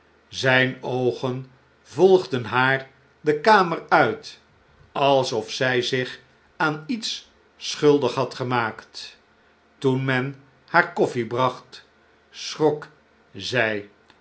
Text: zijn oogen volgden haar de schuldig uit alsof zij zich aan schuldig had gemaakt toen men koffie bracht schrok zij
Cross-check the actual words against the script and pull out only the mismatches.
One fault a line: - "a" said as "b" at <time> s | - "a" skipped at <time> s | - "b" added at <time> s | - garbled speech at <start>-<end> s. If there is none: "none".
- "schuldig" said as "kamer" at 3.4 s
- "iets" added at 6.9 s
- "haar" added at 10.7 s